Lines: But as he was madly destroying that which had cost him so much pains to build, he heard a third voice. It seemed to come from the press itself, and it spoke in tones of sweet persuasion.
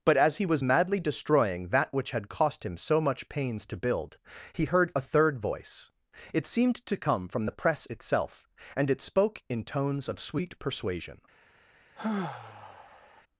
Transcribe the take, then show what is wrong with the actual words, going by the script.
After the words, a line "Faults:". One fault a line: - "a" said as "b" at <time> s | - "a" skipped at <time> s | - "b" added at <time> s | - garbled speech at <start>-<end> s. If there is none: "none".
But as he was madly destroying that which had cost him so much pains to build, he heard a third voice. It seemed to come from the press itself, and it spoke in tones of sweet persuasion.
Faults:
none